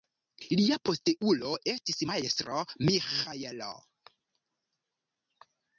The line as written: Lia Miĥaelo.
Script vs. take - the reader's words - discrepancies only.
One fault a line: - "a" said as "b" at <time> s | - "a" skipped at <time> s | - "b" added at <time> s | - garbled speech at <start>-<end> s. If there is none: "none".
- "posteulo estis Majstro" added at 0.9 s